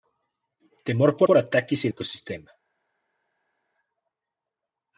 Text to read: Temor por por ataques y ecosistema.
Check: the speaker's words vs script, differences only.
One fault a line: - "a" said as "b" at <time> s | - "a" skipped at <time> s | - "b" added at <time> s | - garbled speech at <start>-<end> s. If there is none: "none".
none